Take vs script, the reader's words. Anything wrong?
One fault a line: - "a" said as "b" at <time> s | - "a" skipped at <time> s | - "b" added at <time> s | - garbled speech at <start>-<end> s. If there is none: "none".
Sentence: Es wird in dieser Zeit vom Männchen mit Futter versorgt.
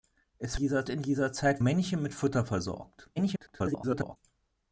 - "wird" said as "dieser" at 0.5 s
- "vom" skipped at 1.6 s
- garbled speech at 3.2-4.2 s